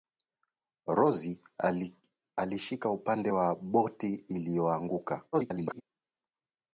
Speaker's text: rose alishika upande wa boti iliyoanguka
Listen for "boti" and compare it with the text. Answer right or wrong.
right